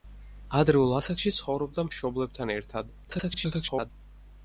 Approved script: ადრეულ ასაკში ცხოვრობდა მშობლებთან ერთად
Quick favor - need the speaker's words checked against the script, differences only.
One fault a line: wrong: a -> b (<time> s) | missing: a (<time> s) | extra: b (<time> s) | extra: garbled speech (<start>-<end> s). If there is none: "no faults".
extra: garbled speech (3.0-3.9 s)